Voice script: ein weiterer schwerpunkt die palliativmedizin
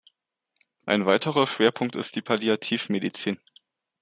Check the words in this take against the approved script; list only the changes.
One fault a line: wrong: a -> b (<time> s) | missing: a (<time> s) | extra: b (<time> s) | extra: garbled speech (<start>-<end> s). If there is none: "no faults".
extra: ist (1.9 s)